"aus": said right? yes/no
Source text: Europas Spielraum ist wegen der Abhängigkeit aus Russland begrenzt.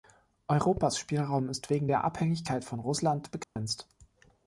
no